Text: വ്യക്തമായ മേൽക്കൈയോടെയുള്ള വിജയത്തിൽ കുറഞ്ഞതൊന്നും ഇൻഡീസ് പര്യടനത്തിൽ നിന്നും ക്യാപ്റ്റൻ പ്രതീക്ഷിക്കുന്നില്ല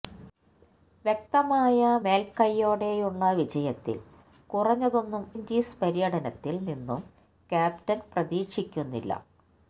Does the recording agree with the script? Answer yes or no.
yes